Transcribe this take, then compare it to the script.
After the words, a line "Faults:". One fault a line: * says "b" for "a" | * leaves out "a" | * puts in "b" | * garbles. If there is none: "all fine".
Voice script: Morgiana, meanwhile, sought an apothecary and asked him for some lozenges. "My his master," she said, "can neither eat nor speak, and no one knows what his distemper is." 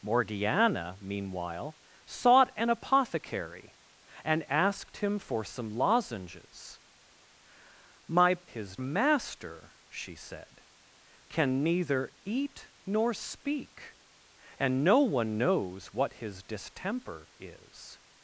Morgiana, meanwhile, sought an apothecary and asked him for some lozenges. "My his master," she said, "can neither eat nor speak, and no one knows what his distemper is."
Faults:
all fine